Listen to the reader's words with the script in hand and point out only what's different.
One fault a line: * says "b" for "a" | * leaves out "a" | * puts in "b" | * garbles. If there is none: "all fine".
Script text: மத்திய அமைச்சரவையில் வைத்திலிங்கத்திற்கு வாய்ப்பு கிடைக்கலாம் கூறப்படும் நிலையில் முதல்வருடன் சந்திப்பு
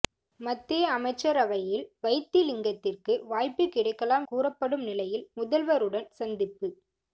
all fine